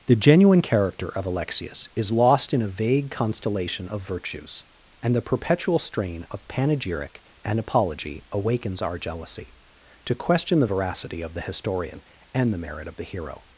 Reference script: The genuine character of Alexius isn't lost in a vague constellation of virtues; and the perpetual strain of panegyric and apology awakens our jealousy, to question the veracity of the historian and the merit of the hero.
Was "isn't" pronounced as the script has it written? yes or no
no